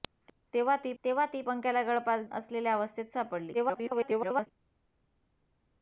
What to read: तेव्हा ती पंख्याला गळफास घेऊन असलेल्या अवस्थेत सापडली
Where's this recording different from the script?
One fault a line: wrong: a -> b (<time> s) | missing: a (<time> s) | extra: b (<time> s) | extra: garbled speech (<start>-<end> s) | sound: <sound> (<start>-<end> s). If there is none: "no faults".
extra: तेव्हा ती (1.0 s)
missing: घेऊन (2.2 s)
extra: garbled speech (3.5-4.5 s)